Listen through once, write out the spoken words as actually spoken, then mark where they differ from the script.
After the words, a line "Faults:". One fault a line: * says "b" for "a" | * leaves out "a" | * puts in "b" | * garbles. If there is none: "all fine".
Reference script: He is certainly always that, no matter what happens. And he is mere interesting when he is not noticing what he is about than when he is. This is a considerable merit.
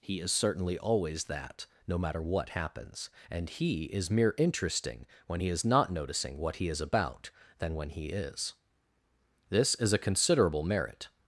He is certainly always that, no matter what happens. And he is mere interesting when he is not noticing what he is about than when he is. This is a considerable merit.
Faults:
all fine